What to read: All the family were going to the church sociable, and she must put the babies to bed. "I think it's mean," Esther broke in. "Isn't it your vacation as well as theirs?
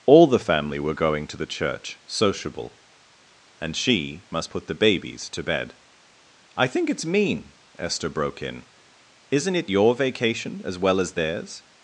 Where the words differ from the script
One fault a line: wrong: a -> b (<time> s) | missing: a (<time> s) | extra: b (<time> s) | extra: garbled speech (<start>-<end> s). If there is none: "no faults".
no faults